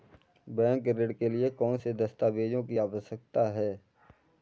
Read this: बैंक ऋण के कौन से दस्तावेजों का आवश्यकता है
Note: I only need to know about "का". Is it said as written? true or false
false